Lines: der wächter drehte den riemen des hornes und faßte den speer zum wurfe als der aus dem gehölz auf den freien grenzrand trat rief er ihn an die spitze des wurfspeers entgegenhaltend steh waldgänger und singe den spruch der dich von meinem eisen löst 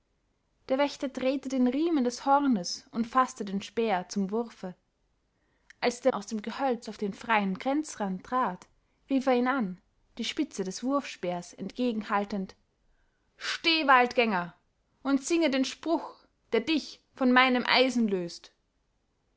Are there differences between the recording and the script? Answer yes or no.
no